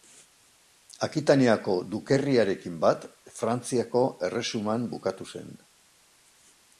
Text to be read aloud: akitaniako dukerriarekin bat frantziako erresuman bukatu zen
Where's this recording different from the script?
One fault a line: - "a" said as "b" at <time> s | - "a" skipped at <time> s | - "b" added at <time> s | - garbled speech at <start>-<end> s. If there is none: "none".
none